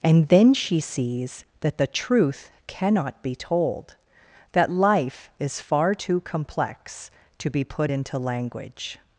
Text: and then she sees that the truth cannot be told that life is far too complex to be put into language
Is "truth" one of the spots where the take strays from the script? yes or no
no